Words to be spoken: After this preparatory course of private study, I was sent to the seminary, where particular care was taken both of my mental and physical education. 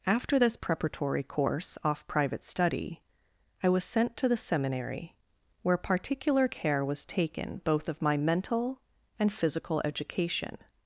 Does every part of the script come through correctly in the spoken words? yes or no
no